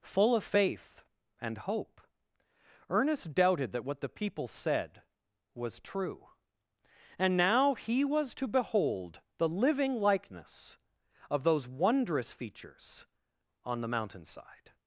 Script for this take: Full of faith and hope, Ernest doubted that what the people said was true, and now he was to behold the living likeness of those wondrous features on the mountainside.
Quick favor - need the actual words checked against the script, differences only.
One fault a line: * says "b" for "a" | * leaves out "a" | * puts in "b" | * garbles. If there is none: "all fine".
all fine